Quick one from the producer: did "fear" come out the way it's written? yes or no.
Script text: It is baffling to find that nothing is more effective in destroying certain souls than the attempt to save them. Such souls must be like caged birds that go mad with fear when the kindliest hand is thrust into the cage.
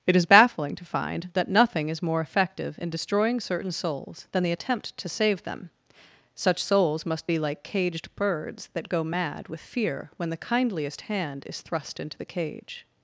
yes